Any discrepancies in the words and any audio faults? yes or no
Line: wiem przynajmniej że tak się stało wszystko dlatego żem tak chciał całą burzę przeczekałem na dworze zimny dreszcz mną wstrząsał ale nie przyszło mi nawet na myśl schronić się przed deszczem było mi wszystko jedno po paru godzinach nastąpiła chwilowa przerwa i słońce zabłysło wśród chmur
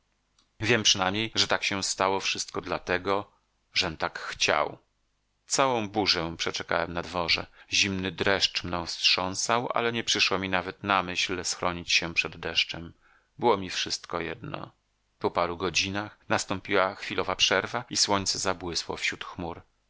no